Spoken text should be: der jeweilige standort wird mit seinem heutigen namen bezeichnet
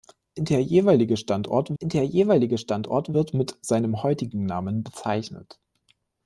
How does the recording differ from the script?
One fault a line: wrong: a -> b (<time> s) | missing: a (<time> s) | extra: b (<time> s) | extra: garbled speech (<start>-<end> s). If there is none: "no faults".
extra: der jeweilige standort (1.8 s)